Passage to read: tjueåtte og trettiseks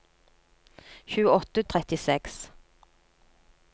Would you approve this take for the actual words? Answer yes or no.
yes